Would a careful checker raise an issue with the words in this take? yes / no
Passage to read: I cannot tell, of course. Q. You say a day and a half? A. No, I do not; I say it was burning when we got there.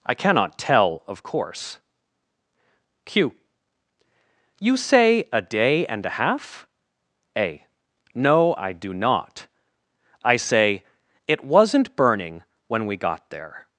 yes